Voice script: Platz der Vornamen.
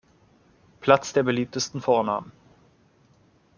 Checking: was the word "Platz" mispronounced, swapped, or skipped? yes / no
no